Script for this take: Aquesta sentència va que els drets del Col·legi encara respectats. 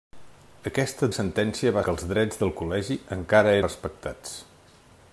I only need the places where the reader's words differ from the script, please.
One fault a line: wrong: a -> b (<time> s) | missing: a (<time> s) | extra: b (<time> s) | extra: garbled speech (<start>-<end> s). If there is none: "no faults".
no faults